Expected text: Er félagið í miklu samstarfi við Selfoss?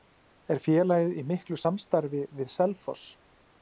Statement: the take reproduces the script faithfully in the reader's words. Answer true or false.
true